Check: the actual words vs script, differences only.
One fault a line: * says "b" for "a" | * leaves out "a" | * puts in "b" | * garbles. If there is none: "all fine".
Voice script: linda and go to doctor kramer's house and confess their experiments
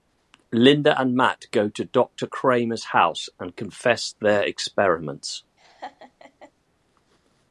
* puts in "matt"